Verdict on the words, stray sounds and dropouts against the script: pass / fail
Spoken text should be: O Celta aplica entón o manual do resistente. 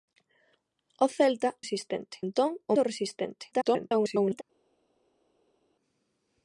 fail